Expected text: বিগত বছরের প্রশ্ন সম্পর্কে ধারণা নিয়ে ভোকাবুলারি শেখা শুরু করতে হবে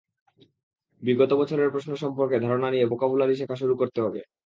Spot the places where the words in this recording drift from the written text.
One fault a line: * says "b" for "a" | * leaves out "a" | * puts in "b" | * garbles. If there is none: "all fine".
all fine